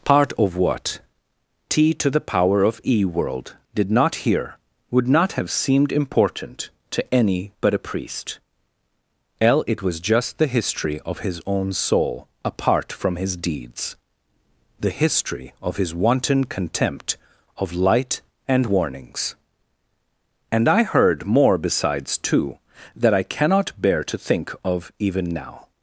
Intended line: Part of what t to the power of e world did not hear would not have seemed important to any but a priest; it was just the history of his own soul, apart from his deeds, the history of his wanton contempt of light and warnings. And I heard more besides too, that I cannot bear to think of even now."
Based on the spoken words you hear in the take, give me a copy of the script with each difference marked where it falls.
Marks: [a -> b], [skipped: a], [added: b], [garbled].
Part of what t to the power of e world did not hear would not have seemed important to any but a priest; [added: l] it was just the history of his own soul, apart from his deeds, the history of his wanton contempt of light and warnings. And I heard more besides too, that I cannot bear to think of even now."